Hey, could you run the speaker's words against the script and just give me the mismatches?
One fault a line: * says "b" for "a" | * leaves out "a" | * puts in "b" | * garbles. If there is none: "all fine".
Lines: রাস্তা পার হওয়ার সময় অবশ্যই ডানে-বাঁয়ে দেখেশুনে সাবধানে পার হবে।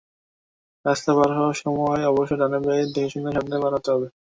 * puts in "হতে"